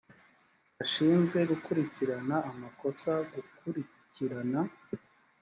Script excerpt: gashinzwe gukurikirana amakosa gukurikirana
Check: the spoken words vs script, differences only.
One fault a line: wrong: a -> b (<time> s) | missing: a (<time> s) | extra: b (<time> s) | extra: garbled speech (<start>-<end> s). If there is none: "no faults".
no faults